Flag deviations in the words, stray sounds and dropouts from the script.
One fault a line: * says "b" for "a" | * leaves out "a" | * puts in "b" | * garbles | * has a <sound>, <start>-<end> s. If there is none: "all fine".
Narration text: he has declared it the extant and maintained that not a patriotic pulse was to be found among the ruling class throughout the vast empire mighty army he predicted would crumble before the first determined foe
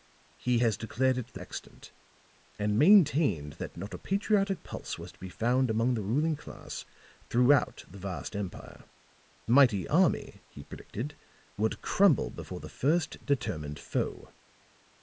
all fine